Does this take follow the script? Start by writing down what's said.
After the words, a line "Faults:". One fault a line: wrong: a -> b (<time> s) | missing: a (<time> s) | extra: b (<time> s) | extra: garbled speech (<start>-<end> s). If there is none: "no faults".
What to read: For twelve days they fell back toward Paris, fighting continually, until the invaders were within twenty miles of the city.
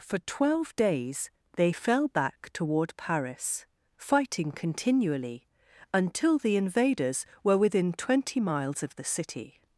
For twelve days they fell back toward Paris, fighting continually, until the invaders were within twenty miles of the city.
Faults:
no faults